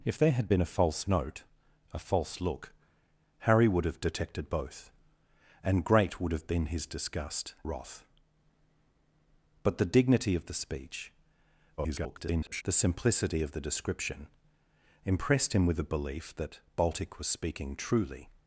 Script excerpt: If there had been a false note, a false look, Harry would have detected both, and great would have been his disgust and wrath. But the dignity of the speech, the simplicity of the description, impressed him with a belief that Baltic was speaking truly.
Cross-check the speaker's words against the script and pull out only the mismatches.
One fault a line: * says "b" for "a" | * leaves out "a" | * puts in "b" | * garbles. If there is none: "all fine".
* leaves out "and"
* garbles